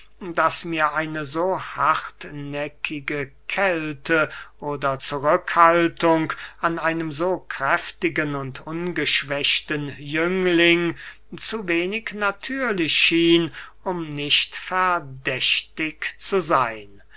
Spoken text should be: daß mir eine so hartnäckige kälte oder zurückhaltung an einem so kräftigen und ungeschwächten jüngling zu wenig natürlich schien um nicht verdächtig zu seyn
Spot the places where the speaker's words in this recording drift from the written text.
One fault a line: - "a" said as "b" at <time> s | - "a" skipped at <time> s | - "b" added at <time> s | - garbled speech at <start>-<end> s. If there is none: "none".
none